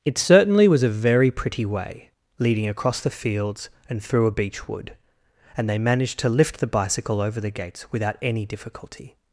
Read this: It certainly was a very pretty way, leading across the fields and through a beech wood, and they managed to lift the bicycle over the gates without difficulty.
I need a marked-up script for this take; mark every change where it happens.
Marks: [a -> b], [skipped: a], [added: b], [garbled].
It certainly was a very pretty way, leading across the fields and through a beech wood, and they managed to lift the bicycle over the gates without [added: any] difficulty.